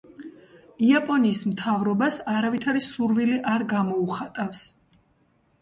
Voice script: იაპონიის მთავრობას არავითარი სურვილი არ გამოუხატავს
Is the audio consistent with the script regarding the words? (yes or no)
yes